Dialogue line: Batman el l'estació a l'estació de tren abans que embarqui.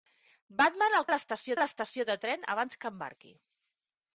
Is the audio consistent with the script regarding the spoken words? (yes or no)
yes